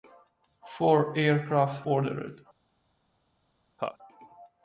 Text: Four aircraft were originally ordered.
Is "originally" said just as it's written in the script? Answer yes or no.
no